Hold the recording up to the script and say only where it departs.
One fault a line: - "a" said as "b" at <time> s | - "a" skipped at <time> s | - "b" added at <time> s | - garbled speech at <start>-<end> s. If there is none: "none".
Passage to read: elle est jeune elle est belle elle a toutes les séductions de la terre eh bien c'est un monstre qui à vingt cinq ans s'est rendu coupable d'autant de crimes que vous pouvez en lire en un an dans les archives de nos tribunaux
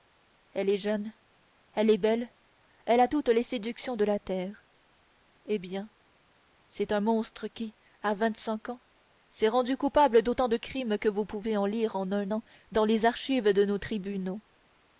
none